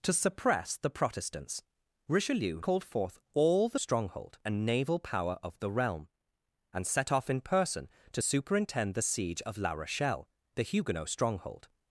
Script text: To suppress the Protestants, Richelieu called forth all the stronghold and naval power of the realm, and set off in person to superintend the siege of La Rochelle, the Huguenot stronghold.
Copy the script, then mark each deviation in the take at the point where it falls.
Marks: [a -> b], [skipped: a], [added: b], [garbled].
To suppress the Protestants, Richelieu called forth all the stronghold and naval power of the realm, and set off in person to superintend the siege of La Rochelle, the Huguenot stronghold.